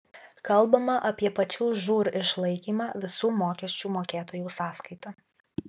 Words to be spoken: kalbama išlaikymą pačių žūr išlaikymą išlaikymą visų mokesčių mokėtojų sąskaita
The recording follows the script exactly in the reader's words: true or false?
false